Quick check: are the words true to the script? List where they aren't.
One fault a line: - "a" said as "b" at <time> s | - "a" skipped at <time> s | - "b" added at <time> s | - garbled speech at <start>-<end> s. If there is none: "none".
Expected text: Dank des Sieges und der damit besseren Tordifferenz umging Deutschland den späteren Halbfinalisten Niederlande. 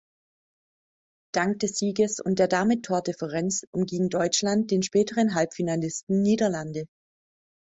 - "besseren" skipped at 2.8 s